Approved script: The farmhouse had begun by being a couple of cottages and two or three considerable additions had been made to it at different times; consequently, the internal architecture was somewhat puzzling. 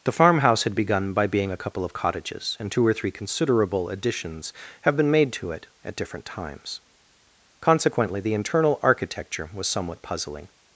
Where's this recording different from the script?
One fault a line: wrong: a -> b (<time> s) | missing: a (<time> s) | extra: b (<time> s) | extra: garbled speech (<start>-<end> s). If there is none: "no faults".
wrong: had -> have (4.8 s)